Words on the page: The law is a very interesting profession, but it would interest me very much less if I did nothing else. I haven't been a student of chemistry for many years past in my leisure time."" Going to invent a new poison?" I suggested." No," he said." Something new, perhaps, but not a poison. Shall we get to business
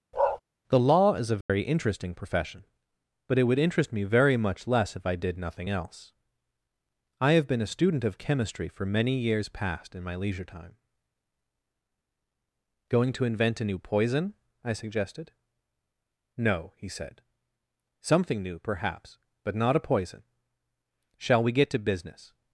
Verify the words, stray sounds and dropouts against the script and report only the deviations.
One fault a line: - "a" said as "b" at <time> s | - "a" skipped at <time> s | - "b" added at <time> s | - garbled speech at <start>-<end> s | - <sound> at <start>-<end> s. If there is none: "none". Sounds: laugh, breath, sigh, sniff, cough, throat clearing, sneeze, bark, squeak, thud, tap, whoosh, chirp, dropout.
- bark at 0.1-0.4 s
- dropout at 1.4-1.5 s
- "haven't" said as "have" at 7.3 s